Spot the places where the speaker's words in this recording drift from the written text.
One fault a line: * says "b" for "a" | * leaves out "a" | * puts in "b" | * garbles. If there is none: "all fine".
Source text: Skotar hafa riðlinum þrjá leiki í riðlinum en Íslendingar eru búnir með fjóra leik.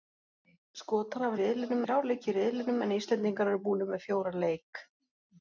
all fine